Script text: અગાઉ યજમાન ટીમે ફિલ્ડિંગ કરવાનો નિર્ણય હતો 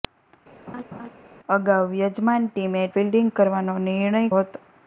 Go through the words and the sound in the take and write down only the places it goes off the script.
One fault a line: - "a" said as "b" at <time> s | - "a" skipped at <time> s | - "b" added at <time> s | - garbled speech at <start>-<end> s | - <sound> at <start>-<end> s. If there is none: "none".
- laugh at 0.7-1.1 s